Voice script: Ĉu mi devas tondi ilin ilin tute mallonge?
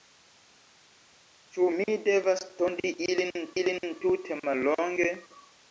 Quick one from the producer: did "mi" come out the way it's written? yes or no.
yes